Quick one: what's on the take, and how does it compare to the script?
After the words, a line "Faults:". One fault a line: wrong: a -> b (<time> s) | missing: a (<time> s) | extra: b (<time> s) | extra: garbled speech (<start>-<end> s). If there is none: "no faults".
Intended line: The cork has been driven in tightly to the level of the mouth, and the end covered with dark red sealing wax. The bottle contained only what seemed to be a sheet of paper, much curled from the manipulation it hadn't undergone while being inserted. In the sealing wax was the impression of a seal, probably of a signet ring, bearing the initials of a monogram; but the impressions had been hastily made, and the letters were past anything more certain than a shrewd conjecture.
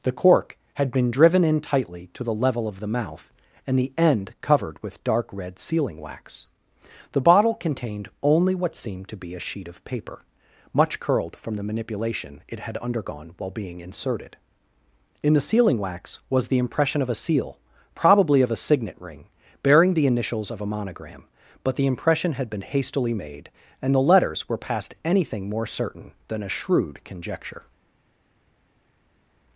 The cork had been driven in tightly to the level of the mouth, and the end covered with dark red sealing wax. The bottle contained only what seemed to be a sheet of paper, much curled from the manipulation it had undergone while being inserted. In the sealing wax was the impression of a seal, probably of a signet ring, bearing the initials of a monogram; but the impression had been hastily made, and the letters were past anything more certain than a shrewd conjecture.
Faults:
wrong: has -> had (0.8 s)
wrong: hadn't -> had (12.6 s)
wrong: impressions -> impression (21.9 s)